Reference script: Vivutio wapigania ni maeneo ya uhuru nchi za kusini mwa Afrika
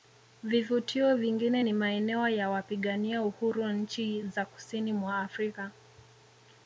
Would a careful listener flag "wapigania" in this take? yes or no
yes